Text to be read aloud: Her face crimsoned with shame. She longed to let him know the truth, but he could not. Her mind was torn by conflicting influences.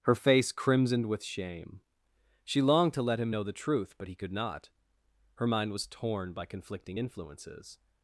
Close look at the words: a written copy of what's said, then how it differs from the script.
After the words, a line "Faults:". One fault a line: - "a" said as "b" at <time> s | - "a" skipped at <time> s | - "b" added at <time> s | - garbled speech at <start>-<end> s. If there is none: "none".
Her face crimsoned with shame. She longed to let him know the truth, but he could not. Her mind was torn by conflicting influences.
Faults:
none